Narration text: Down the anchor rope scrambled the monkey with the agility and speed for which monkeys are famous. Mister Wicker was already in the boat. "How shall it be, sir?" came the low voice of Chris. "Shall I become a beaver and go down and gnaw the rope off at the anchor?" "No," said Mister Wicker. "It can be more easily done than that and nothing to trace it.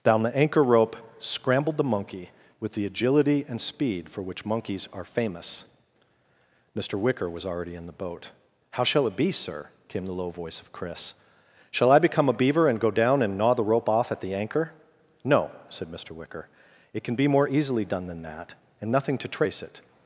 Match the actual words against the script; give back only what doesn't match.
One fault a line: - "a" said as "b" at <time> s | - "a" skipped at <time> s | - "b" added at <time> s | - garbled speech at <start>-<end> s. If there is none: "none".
none